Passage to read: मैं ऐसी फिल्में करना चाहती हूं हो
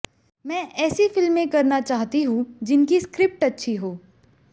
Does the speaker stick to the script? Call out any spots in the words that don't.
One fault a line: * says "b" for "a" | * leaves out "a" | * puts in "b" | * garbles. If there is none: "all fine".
* puts in "जिनकी स्क्रिप्ट अच्छी"